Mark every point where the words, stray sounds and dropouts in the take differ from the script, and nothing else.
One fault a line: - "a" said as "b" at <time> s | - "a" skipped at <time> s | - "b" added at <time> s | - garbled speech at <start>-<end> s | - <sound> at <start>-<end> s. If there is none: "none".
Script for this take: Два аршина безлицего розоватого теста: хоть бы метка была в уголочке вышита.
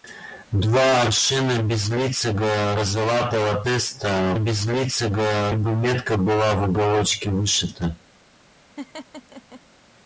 - "хоть" said as "безлицего" at 4.4 s
- laugh at 8.8-9.6 s